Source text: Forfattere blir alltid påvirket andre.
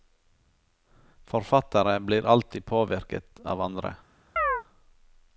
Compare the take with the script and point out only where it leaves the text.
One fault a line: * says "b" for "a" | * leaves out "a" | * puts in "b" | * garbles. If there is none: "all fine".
* puts in "av"